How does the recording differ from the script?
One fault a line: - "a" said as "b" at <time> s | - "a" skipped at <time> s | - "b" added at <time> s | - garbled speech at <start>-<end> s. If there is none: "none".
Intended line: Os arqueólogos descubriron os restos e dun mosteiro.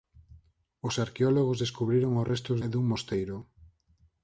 none